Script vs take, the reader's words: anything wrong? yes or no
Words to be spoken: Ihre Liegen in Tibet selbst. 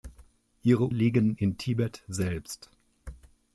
no